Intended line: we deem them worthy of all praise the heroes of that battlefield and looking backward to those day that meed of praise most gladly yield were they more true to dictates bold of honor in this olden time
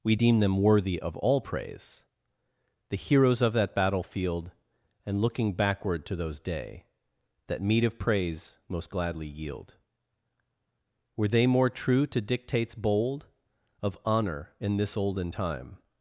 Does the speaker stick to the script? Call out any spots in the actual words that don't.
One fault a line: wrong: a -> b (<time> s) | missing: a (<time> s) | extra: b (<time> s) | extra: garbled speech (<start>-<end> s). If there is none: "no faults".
no faults